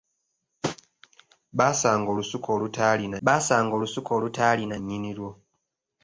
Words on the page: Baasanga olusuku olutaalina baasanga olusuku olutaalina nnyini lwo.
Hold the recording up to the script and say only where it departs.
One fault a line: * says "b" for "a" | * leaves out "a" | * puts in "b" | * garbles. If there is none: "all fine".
all fine